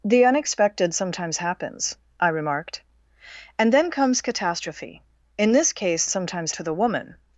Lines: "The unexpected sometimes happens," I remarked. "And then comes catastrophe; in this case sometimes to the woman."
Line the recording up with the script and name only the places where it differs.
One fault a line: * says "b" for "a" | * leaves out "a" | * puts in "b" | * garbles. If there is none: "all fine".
all fine